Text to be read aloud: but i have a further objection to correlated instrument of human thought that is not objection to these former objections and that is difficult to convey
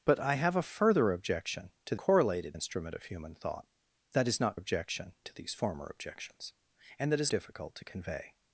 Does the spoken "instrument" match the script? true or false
true